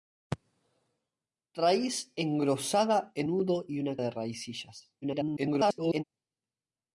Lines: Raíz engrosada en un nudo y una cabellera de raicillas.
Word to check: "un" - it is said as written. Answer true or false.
false